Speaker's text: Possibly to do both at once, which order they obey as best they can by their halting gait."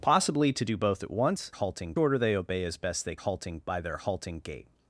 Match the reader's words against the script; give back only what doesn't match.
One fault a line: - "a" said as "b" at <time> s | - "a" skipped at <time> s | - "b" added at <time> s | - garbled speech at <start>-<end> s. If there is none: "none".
- "which" said as "halting" at 1.5 s
- "can" said as "halting" at 3.2 s